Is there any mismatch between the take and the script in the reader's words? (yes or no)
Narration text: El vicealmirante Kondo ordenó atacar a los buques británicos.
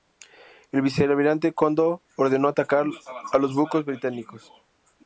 no